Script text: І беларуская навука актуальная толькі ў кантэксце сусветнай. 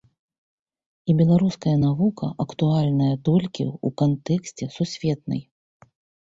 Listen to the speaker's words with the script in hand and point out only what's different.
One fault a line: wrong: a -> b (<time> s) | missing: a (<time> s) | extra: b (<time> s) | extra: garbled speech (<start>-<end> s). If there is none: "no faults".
no faults